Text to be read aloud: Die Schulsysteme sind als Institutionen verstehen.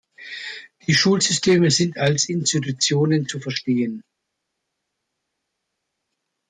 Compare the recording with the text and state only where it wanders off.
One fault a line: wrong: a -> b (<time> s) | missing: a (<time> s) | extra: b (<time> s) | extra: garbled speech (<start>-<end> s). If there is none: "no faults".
extra: zu (3.3 s)